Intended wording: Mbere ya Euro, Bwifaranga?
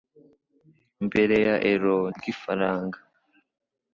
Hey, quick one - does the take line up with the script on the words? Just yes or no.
yes